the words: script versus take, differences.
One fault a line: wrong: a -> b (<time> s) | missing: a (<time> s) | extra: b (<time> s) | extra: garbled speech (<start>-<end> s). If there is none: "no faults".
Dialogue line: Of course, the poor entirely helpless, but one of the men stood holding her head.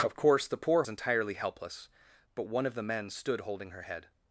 no faults